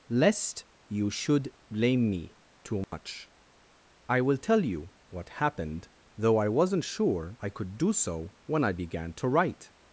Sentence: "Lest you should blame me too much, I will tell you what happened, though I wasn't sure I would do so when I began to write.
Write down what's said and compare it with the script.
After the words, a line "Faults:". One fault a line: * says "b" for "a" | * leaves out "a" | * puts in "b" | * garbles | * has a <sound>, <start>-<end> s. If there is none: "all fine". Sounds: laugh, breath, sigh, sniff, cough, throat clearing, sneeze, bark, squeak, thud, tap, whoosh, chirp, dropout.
"Lest you should blame me too much, I will tell you what happened, though I wasn't sure I could do so when I began to write.
Faults:
* has a dropout, 2.8-2.9 s
* says "could" for "would"